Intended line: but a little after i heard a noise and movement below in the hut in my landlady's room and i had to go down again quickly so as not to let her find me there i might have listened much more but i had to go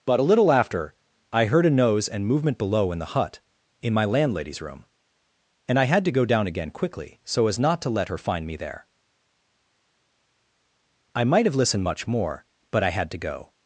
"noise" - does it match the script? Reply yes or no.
no